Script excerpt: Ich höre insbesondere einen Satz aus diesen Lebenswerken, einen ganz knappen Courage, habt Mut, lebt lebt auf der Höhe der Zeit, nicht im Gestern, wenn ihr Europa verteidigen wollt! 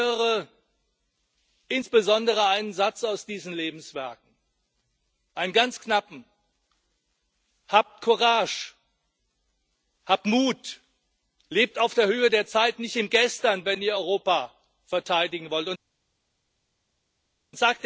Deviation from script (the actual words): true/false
true